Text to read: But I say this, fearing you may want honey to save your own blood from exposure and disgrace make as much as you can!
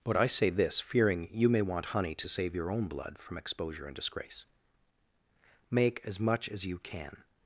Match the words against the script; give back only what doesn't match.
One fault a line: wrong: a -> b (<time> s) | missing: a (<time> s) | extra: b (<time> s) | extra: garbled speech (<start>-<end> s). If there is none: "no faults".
no faults